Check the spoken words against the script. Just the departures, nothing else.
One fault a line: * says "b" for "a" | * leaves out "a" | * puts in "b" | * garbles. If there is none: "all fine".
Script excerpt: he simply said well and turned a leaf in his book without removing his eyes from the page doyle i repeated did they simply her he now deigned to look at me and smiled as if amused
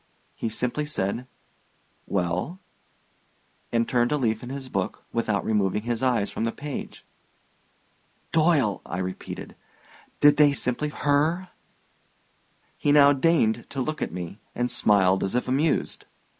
all fine